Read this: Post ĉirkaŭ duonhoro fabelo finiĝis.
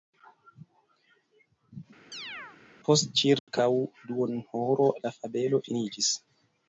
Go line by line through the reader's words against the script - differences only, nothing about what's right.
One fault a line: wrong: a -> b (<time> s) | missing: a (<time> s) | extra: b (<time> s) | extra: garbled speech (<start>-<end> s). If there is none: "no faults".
extra: la (5.1 s)